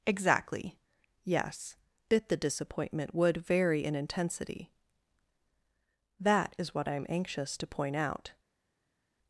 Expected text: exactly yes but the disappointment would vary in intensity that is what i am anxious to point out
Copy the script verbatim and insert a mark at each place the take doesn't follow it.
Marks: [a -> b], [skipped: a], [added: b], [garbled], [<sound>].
exactly yes [but -> bit] the disappointment would vary in intensity that is what i am anxious to point out